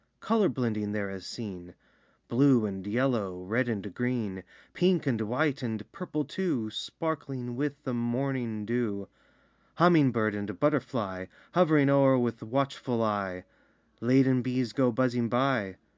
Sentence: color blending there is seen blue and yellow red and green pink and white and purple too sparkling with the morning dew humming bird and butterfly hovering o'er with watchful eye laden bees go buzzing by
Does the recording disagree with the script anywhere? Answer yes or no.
no